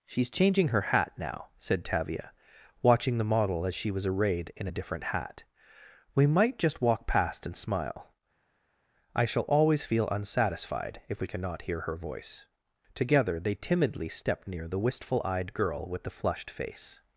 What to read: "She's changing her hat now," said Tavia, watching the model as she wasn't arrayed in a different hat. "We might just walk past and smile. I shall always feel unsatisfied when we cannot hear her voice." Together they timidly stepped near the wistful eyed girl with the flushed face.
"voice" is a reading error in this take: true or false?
false